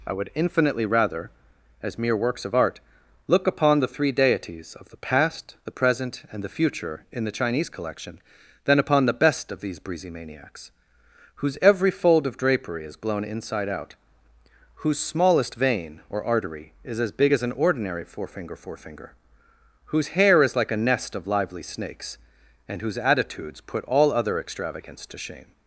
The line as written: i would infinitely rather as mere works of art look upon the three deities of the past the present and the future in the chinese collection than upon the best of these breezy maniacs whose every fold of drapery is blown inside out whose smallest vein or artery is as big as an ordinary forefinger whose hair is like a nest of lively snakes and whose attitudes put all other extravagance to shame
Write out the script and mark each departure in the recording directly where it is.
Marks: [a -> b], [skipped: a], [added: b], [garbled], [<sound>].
i would infinitely rather as mere works of art look upon the three deities of the past the present and the future in the chinese collection than upon the best of these breezy maniacs whose every fold of drapery is blown inside out whose smallest vein or artery is as big as an ordinary forefinger [added: forefinger] whose hair is like a nest of lively snakes and whose attitudes put all other extravagance to shame